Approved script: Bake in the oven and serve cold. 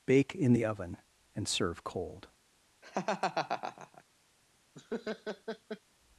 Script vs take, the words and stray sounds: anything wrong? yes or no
yes